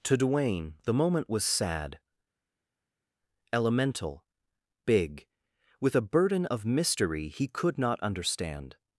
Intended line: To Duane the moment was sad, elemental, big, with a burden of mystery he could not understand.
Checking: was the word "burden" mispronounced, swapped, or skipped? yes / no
no